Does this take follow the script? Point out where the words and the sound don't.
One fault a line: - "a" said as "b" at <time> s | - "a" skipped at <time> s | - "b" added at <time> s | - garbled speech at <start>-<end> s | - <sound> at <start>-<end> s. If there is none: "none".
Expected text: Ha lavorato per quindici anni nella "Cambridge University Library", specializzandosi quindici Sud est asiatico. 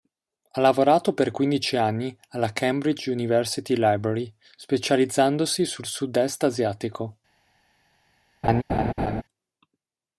- "nella" said as "alla" at 2.3 s
- "quindici" said as "sul" at 5.6 s
- laugh at 8.4-9.2 s